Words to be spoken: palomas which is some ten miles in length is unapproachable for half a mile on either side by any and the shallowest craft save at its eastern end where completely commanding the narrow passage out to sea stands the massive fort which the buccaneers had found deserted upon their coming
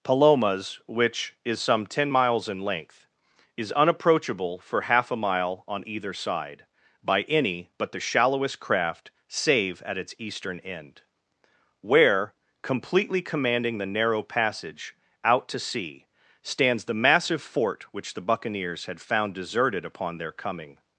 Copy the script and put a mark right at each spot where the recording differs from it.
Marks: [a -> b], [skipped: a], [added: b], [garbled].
palomas which is some ten miles in length is unapproachable for half a mile on either side by any [and -> but] the shallowest craft save at its eastern end where completely commanding the narrow passage out to sea stands the massive fort which the buccaneers had found deserted upon their coming